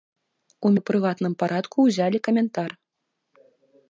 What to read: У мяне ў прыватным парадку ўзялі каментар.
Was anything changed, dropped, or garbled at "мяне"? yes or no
yes